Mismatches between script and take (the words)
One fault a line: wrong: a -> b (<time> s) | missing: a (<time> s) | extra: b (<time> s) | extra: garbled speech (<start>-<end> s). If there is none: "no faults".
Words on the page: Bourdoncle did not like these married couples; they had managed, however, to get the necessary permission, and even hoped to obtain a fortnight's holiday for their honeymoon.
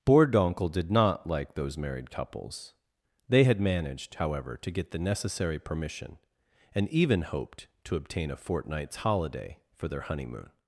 wrong: these -> those (1.5 s)